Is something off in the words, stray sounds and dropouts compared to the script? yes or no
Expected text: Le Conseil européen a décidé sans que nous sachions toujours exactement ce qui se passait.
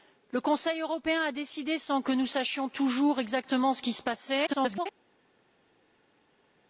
yes